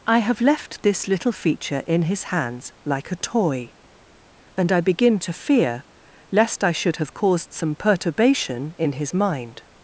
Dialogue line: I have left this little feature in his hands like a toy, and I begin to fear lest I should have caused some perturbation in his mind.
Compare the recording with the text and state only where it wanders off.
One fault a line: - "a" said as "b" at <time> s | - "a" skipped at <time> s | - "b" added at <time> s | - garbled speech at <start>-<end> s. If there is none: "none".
none